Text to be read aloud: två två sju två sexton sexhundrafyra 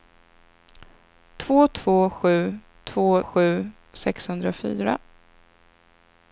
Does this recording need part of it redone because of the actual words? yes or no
yes